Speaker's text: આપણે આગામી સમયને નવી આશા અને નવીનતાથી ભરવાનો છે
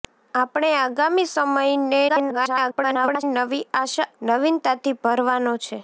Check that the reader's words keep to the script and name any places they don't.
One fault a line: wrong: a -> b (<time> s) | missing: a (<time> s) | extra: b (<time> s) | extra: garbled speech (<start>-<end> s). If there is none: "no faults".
extra: garbled speech (2.1-3.2 s)
missing: અને (4.1 s)